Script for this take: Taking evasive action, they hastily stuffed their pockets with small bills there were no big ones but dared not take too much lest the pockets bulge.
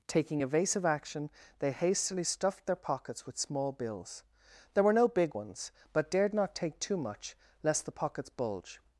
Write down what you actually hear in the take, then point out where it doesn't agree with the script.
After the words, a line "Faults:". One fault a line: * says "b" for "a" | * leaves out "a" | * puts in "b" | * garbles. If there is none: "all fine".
Taking evasive action, they hastily stuffed their pockets with small bills there were no big ones but dared not take too much lest the pockets bulge.
Faults:
all fine